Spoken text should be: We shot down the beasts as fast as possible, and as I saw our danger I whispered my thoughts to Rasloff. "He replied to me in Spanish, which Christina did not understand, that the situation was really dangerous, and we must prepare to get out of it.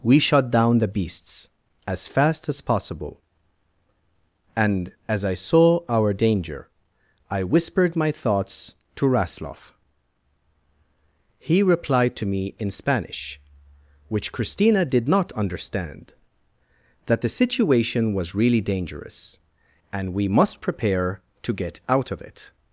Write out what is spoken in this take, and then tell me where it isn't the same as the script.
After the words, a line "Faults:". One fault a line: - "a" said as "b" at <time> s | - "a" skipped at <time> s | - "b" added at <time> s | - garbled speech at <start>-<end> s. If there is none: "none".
We shot down the beasts as fast as possible, and as I saw our danger I whispered my thoughts to Rasloff. "He replied to me in Spanish, which Christina did not understand, that the situation was really dangerous, and we must prepare to get out of it.
Faults:
none